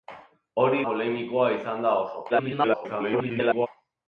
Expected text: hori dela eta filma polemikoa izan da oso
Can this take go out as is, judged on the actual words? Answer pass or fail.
fail